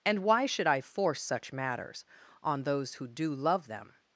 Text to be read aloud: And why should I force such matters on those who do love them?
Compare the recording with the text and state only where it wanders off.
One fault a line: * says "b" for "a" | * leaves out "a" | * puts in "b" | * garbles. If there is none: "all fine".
all fine